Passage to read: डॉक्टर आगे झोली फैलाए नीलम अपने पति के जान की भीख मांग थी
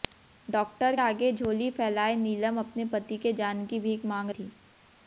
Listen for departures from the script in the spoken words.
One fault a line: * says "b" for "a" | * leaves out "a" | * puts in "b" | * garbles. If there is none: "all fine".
all fine